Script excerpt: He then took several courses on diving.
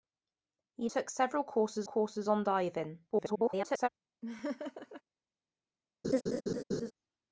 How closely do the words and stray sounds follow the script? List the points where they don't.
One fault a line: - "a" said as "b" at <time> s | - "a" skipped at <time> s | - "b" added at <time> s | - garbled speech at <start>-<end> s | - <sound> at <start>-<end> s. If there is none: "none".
- "then" skipped at 0.9 s
- "courses" added at 1.8 s
- garbled speech at 3.1-3.9 s
- laugh at 4.2-5.0 s
- laugh at 6.0-6.9 s